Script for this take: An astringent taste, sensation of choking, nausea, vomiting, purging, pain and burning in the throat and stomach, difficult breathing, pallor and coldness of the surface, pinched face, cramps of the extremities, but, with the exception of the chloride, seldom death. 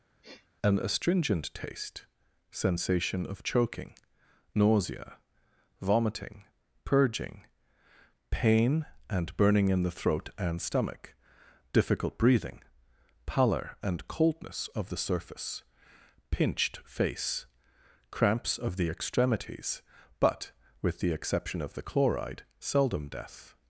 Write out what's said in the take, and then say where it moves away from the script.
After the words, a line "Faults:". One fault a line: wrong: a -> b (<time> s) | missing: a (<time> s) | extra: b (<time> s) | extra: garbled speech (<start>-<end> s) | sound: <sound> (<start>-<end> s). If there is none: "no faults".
An astringent taste, sensation of choking, nausea, vomiting, purging, pain and burning in the throat and stomach, difficult breathing, pallor and coldness of the surface, pinched face, cramps of the extremities, but, with the exception of the chloride, seldom death.
Faults:
sound: sniff (0.2-0.5 s)